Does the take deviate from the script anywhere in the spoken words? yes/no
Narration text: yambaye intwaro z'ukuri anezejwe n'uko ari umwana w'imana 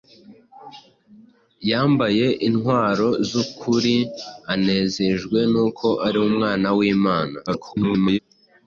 yes